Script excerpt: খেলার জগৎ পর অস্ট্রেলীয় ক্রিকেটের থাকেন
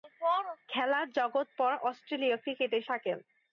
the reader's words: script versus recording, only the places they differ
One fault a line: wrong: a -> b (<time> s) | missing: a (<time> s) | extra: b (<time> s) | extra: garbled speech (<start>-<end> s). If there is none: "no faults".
no faults